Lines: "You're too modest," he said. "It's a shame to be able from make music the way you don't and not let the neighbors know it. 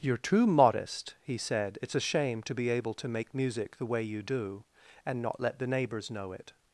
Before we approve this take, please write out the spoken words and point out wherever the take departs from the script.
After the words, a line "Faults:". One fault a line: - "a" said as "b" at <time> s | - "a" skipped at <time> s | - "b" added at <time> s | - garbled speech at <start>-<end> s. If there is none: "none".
"You're too modest," he said. "It's a shame to be able to make music the way you do and not let the neighbors know it.
Faults:
- "from" said as "to" at 3.0 s
- "don't" said as "do" at 4.2 s